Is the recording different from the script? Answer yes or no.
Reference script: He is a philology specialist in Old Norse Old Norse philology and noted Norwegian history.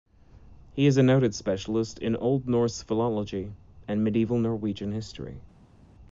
yes